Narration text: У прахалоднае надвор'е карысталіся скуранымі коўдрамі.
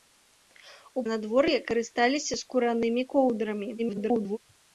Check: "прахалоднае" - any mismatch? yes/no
yes